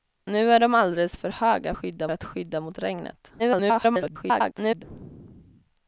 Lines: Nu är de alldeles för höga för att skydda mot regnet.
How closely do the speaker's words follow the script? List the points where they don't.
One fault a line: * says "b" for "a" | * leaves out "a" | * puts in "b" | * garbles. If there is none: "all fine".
* says "skydda" for "för"
* garbles